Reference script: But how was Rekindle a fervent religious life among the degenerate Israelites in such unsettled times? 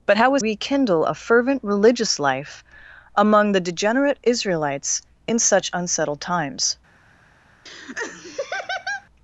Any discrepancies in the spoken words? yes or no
no